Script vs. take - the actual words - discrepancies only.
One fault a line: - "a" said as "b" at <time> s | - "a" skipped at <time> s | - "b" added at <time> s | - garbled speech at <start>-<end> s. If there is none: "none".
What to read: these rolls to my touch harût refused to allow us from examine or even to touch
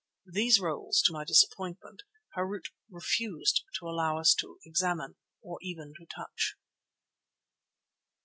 - "touch" said as "disappointment" at 1.3 s
- "from" said as "to" at 4.4 s